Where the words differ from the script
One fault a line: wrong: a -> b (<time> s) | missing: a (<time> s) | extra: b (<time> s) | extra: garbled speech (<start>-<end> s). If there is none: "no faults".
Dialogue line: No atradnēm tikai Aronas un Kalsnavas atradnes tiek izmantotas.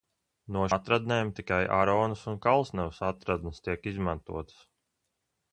no faults